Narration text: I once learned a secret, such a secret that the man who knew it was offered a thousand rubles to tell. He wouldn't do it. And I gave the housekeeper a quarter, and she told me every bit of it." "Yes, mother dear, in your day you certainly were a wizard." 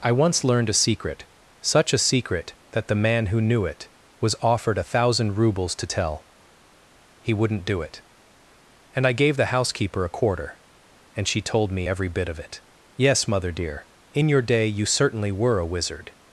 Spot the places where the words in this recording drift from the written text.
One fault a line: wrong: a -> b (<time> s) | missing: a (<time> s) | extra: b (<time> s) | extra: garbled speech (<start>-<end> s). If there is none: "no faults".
no faults